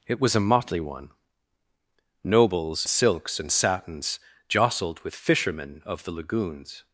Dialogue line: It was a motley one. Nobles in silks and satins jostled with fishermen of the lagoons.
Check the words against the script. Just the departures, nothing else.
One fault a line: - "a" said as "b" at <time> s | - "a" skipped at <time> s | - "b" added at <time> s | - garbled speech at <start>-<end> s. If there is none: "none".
- "in" skipped at 2.9 s